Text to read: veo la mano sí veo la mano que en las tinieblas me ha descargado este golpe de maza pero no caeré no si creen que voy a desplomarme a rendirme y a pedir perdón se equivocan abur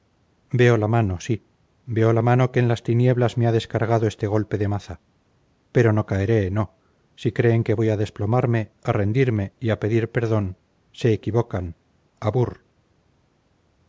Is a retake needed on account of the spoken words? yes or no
no